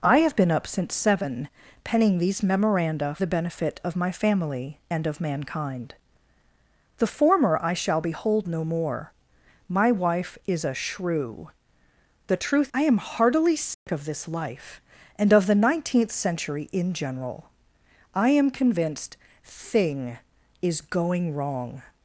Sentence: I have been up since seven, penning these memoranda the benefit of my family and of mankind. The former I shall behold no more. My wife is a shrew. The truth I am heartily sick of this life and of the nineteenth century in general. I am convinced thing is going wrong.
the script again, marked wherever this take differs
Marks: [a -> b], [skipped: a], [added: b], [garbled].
I have been up since seven, penning these memoranda the benefit of my family and of mankind. The former I shall behold no more. My wife is a shrew. The truth I am heartily sick of this life and of the nineteenth century in general. I am convinced thing is going wrong.